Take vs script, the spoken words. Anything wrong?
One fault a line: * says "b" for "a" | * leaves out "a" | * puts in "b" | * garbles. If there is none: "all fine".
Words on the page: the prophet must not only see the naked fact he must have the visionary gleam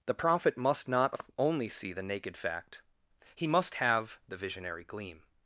all fine